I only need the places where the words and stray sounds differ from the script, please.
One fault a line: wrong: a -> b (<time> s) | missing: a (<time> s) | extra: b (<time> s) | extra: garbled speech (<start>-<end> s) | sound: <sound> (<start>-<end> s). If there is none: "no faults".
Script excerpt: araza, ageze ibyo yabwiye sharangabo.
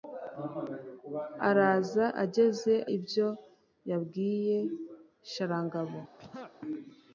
sound: throat clearing (6.2-6.5 s)